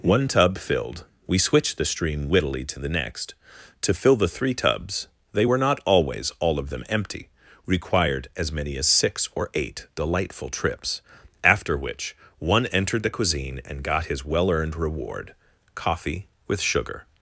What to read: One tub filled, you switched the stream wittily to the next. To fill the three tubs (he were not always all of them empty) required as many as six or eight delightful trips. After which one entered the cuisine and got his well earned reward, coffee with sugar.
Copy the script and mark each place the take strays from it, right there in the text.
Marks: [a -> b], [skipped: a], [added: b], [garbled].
One tub filled, [you -> we] switched the stream wittily to the next. To fill the three tubs [(he -> they] were not always all of them empty) required as many as six or eight delightful trips. After which one entered the cuisine and got his well earned reward, coffee with sugar.